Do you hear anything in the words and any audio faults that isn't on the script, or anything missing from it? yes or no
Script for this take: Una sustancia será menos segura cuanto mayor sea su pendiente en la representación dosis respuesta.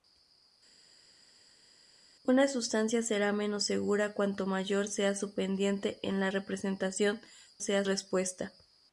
yes